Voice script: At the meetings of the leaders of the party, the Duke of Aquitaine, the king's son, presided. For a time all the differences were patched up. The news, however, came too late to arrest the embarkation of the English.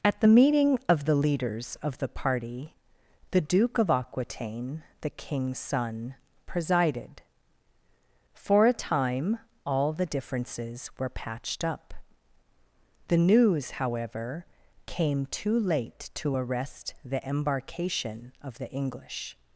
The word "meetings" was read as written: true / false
false